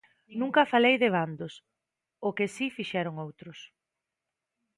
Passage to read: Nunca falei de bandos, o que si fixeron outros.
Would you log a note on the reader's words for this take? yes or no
no